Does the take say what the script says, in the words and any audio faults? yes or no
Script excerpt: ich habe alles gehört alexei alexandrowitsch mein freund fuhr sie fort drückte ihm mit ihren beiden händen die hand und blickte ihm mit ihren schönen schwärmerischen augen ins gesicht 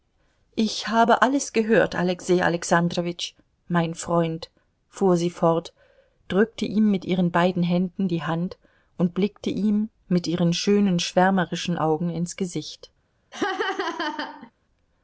no